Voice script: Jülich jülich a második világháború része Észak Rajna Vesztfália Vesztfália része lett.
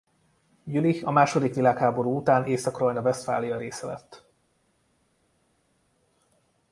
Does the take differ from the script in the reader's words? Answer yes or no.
yes